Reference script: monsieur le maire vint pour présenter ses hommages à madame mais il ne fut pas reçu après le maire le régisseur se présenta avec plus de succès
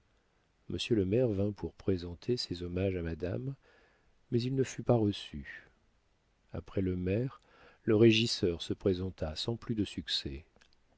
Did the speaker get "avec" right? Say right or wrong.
wrong